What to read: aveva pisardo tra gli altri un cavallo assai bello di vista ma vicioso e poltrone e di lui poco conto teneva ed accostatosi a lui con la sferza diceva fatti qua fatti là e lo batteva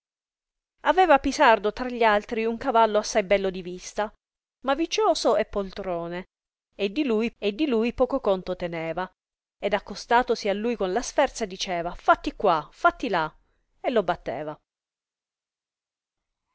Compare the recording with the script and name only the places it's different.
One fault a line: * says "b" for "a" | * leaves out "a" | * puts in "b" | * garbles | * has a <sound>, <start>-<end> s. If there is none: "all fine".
* puts in "e di lui"